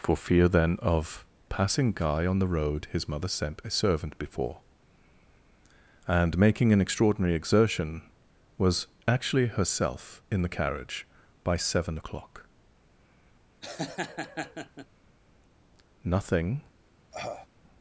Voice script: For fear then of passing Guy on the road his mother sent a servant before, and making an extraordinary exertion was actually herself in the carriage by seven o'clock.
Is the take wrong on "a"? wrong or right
right